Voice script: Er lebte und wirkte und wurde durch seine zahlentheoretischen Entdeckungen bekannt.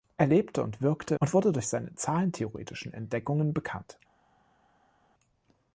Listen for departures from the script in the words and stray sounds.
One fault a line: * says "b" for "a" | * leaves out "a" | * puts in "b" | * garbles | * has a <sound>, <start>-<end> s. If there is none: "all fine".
all fine